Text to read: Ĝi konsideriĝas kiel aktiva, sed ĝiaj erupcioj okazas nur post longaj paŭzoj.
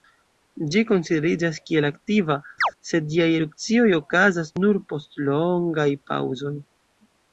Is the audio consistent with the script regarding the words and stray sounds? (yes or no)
no